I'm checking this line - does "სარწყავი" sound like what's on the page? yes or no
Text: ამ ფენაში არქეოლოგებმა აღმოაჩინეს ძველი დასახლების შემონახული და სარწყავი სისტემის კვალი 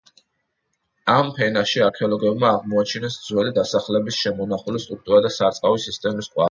yes